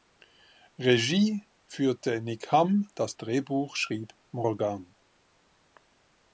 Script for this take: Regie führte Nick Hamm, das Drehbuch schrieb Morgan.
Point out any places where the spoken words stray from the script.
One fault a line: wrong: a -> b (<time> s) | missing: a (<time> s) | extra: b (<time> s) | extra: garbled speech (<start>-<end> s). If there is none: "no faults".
no faults